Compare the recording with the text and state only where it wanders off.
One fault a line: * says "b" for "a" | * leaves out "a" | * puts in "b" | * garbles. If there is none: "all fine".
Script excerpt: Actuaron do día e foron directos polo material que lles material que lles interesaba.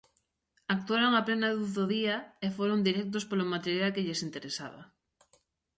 * puts in "a plena luz"
* leaves out "material que lles"